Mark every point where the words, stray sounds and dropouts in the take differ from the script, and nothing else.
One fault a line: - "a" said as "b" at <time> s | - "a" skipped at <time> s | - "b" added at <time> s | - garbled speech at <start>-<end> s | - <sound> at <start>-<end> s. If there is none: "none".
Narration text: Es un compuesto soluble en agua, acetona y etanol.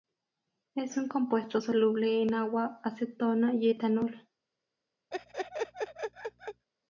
- laugh at 5.1-6.6 s